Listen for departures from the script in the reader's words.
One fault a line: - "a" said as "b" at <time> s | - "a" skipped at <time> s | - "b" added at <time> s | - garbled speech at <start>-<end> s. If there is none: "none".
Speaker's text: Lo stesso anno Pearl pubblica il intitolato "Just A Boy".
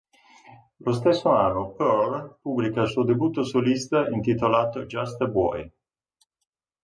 - "suo debutto solista" added at 2.9 s